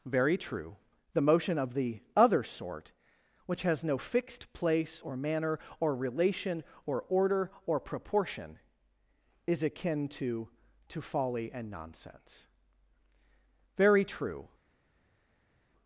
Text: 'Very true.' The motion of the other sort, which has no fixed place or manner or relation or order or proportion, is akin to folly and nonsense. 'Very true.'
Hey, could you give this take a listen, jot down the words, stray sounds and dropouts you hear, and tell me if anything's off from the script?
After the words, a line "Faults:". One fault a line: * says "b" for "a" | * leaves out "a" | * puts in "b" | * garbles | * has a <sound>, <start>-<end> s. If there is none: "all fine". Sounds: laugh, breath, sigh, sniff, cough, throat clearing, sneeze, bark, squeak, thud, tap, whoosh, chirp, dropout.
'Very true.' The motion of the other sort, which has no fixed place or manner or relation or order or proportion, is akin to to folly and nonsense. 'Very true.'
Faults:
* puts in "to"